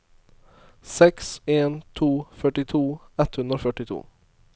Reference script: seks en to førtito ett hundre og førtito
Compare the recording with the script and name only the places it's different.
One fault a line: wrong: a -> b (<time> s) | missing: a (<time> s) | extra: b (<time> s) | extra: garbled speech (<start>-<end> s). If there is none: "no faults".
no faults